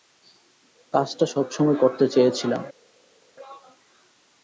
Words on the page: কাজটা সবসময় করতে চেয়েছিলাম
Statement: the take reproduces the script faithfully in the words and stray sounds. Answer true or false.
true